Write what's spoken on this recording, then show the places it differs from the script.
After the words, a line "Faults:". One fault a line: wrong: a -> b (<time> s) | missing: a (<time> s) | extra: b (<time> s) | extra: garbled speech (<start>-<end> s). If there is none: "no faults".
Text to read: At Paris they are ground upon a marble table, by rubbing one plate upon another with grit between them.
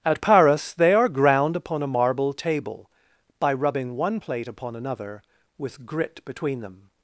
At Paris they are ground upon a marble table, by rubbing one plate upon another with grit between them.
Faults:
no faults